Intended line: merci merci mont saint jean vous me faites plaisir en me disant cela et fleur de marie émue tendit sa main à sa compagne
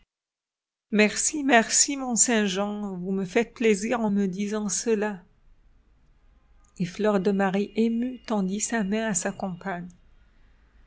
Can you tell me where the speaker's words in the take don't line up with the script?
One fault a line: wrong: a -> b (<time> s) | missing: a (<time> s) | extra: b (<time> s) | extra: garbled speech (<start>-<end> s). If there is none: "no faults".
no faults